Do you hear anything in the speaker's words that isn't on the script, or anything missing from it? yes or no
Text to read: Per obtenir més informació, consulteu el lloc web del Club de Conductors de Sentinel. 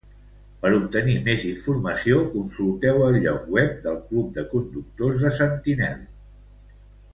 no